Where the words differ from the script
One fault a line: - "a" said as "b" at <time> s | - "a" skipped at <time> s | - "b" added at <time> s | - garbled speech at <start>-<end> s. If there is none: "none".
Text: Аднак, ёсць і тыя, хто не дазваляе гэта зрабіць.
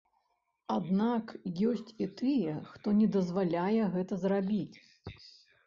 none